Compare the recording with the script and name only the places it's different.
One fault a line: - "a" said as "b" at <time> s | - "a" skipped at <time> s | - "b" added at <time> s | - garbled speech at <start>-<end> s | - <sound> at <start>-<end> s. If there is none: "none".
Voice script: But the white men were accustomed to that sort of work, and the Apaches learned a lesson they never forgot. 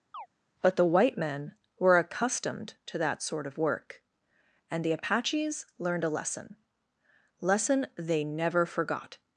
- chirp at 0.1-0.3 s
- "lesson" added at 7.4 s